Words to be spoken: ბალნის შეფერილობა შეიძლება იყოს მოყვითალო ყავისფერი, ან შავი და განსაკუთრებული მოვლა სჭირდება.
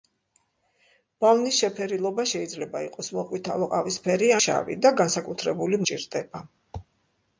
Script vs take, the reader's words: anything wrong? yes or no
yes